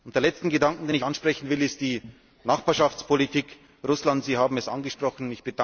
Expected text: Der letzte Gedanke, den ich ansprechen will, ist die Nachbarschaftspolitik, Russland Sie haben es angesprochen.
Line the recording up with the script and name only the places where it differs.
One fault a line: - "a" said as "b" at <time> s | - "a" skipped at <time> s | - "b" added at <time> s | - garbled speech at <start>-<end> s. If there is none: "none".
none